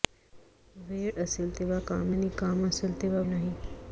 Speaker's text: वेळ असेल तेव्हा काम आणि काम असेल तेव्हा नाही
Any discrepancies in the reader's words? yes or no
no